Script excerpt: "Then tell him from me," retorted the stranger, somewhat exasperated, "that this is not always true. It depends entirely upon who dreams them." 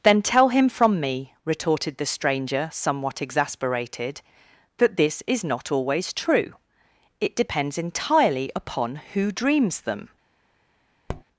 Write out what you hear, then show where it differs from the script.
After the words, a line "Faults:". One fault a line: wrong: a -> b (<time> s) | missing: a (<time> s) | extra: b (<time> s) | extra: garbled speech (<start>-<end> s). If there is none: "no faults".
"Then tell him from me," retorted the stranger, somewhat exasperated, "that this is not always true. It depends entirely upon who dreams them."
Faults:
no faults